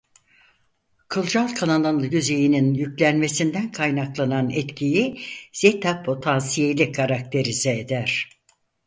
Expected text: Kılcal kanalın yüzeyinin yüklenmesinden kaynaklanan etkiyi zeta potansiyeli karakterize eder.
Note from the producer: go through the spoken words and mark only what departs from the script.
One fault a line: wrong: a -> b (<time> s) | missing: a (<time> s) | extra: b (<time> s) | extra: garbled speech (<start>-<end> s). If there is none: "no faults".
no faults